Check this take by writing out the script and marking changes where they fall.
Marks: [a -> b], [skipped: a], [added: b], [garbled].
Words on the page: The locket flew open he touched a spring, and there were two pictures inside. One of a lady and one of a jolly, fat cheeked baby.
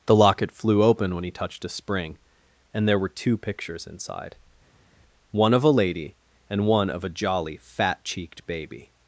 The locket flew open [added: when] he touched a spring, and there were two pictures inside. One of a lady and one of a jolly, fat cheeked baby.